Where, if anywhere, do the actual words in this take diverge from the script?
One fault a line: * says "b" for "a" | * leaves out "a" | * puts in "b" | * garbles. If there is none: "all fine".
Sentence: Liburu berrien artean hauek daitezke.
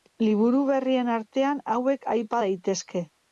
* puts in "aipa"